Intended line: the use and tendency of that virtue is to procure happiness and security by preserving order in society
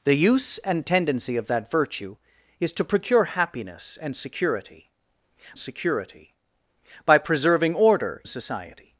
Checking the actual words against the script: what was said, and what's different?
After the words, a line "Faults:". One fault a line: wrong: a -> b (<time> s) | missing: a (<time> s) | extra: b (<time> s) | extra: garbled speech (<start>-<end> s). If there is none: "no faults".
the use and tendency of that virtue is to procure happiness and security security by preserving order society
Faults:
extra: security (5.6 s)
missing: in (8.2 s)